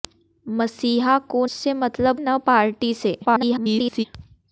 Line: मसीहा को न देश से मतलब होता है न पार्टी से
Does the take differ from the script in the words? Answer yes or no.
yes